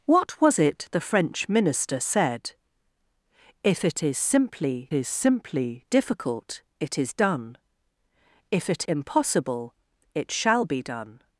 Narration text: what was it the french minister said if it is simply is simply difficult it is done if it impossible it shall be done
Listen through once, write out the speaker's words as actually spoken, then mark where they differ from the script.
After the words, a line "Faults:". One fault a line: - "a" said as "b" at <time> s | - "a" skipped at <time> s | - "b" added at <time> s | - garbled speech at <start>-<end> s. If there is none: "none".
what was it the french minister said if it is simply is simply difficult it is done if it impossible it shall be done
Faults:
none